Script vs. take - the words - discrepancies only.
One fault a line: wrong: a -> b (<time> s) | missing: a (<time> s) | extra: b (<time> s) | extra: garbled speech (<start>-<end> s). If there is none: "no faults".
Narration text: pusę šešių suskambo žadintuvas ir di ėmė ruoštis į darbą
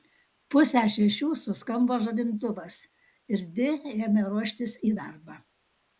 no faults